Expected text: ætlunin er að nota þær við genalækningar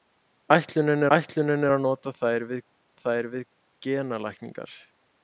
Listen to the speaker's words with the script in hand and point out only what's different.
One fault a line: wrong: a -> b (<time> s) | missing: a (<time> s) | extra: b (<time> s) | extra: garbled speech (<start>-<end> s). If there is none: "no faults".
extra: ætlunin (1.1 s)
extra: þær við (3.0 s)